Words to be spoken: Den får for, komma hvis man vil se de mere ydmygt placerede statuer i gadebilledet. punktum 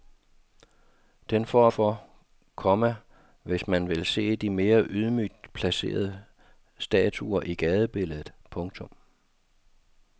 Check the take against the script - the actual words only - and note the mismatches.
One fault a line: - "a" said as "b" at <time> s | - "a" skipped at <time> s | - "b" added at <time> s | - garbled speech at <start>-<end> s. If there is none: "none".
none